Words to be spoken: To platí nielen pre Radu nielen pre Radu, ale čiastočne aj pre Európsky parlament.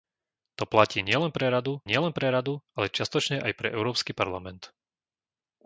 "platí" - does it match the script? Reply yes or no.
yes